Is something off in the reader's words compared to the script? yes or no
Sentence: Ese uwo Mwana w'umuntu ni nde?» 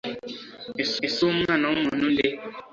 yes